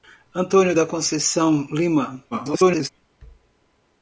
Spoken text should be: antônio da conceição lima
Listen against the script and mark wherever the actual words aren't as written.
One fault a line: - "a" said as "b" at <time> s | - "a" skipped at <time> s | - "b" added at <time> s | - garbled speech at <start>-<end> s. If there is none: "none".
- garbled speech at 2.3-2.9 s